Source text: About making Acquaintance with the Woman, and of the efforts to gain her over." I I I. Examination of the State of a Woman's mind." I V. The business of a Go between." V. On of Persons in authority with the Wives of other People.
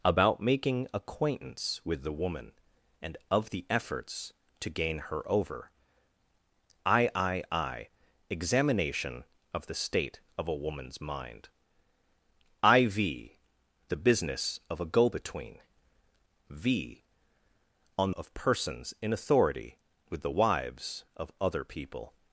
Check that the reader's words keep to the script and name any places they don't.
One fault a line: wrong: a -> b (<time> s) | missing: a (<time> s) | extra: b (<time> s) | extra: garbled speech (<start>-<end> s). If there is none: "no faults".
no faults